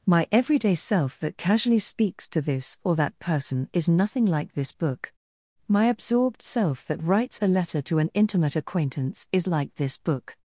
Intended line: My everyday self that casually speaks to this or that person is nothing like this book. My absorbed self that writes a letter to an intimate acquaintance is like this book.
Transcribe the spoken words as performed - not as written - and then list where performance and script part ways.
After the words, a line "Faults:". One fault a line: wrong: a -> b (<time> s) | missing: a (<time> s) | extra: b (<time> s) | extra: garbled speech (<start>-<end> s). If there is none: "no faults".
My everyday self that casually speaks to this or that person is nothing like this book. My absorbed self that writes a letter to an intimate acquaintance is like this book.
Faults:
no faults